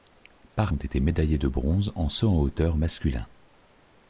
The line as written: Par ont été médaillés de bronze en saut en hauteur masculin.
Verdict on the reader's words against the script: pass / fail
pass